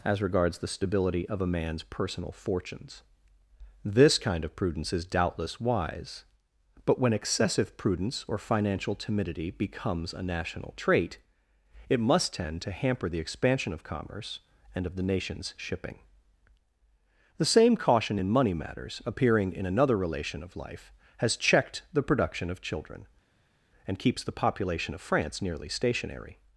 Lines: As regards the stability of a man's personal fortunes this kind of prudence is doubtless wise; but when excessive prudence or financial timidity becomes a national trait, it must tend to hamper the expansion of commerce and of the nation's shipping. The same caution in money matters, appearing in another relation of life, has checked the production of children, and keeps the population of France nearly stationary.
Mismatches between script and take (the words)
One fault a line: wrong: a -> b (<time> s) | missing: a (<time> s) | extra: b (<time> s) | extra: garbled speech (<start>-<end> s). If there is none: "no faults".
no faults